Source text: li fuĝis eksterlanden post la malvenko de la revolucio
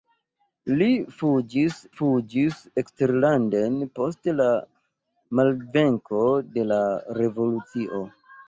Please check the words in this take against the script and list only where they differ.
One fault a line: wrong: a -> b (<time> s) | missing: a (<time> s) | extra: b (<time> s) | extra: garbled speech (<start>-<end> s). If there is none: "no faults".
extra: fuĝis (2.0 s)